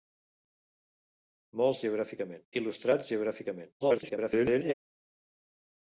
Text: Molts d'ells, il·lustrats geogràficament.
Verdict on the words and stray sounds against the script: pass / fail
fail